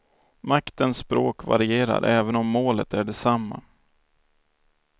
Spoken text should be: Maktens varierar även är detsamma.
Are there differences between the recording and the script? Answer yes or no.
yes